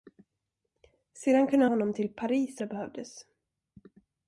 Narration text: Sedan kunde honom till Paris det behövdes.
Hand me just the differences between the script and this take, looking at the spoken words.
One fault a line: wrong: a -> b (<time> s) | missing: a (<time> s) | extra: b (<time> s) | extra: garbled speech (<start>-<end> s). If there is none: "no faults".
no faults